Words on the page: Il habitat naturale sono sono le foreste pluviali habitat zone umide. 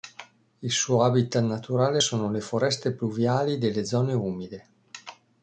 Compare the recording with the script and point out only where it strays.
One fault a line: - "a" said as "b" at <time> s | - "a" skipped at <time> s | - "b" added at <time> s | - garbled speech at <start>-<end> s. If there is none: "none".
- "suo" added at 0.7 s
- "sono" skipped at 2.3 s
- "habitat" said as "delle" at 3.6 s